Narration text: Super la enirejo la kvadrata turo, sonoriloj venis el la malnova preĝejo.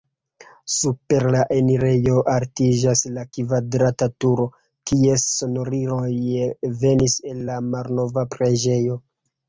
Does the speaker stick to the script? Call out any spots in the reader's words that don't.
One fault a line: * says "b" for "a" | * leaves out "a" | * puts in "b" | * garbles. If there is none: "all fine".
* puts in "altiĝas"
* puts in "kies"